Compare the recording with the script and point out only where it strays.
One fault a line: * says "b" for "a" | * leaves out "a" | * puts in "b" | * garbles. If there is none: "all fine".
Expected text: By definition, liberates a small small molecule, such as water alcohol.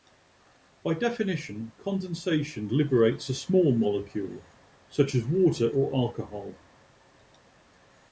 * puts in "condensation"
* leaves out "small"
* puts in "or"